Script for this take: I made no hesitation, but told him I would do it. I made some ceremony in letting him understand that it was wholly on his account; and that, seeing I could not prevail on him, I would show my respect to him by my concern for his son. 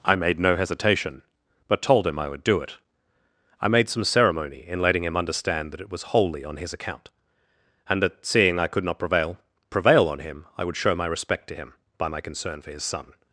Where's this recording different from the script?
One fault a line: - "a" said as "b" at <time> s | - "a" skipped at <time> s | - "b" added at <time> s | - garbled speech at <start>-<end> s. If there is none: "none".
- "prevail" added at 9.7 s